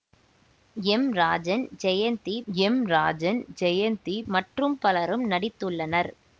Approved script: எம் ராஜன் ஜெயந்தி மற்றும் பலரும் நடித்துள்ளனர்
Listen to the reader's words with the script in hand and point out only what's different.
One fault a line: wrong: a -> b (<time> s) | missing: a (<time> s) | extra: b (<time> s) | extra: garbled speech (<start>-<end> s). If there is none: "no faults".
extra: எம் ராஜன் ஜெயந்தி (2.5 s)